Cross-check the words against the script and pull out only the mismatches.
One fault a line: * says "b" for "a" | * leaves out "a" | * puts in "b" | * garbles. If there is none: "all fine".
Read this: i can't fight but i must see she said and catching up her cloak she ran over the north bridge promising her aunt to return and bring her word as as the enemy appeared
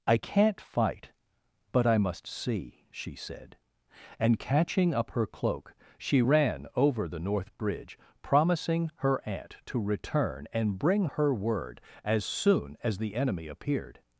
* puts in "soon"